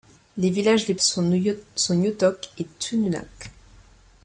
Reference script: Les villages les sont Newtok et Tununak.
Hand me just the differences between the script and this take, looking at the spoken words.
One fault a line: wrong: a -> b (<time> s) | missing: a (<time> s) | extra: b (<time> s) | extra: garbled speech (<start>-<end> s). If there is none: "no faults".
no faults